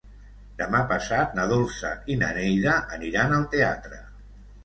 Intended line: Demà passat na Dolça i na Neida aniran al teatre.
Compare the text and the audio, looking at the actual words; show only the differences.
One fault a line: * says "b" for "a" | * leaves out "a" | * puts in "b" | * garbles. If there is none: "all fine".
all fine